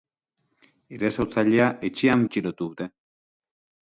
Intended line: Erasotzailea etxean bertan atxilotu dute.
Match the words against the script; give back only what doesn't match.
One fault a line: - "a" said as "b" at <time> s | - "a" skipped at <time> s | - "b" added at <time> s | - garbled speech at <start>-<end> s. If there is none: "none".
- "bertan" skipped at 2.2 s